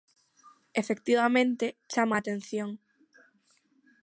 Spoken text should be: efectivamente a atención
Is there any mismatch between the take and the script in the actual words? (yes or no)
yes